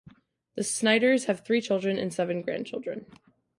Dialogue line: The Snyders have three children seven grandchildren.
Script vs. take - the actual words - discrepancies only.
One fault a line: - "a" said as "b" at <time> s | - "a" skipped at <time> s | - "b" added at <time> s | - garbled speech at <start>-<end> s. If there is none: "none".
- "and" added at 2.0 s